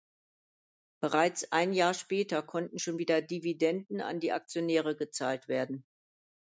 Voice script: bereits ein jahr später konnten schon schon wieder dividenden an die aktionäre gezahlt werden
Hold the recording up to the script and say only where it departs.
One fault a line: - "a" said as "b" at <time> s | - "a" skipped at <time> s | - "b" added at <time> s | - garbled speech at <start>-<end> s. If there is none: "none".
- "schon" skipped at 3.0 s